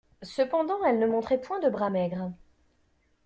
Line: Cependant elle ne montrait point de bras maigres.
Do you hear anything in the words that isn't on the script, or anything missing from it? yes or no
no